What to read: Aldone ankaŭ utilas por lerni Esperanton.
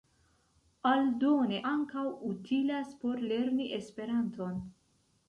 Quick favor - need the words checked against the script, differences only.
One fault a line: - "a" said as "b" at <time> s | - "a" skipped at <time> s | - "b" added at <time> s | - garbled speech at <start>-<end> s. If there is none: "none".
none